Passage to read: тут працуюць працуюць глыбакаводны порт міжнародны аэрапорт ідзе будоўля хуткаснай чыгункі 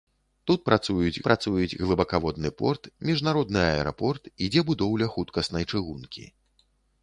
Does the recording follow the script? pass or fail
pass